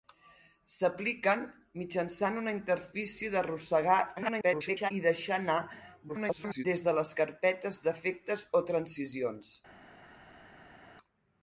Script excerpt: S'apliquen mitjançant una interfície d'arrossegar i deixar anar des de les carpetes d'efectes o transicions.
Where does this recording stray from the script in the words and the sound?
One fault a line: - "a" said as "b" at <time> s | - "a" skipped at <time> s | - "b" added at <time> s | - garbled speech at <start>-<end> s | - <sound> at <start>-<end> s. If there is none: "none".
- garbled speech at 4.2-4.9 s
- garbled speech at 6.1-6.6 s